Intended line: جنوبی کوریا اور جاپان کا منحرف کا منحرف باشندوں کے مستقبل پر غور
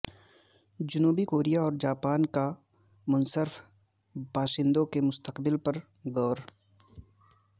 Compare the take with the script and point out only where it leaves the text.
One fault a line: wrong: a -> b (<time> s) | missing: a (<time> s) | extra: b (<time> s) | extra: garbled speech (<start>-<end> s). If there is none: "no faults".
missing: کا منحرف (3.6 s)